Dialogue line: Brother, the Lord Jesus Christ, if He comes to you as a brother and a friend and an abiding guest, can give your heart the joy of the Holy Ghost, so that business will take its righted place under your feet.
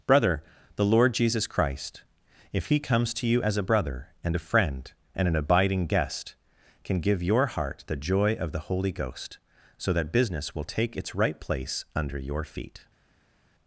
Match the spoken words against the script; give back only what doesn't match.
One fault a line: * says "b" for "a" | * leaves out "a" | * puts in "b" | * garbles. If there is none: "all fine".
* says "right" for "righted"